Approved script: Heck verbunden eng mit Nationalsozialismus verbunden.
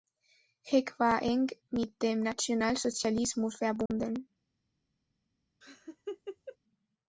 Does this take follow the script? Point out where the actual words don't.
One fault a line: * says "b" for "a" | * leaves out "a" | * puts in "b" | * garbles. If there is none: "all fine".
* says "war" for "verbunden"
* puts in "dem"